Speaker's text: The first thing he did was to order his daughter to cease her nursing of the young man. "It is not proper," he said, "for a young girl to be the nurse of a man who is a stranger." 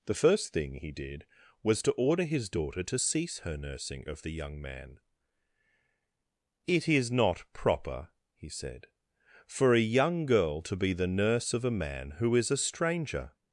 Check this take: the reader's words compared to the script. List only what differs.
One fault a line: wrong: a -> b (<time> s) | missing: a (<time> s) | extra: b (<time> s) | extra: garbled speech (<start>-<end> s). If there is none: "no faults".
no faults